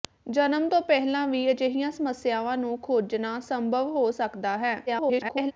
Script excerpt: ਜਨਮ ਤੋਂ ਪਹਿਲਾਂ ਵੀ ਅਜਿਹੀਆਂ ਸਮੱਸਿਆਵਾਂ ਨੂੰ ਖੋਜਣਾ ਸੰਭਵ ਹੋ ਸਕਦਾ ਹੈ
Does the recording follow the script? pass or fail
fail